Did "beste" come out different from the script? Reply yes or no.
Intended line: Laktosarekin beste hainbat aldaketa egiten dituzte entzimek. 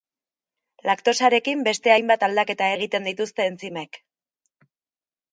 no